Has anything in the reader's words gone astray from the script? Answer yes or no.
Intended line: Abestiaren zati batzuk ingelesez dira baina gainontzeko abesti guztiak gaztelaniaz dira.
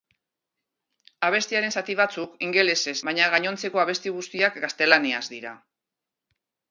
yes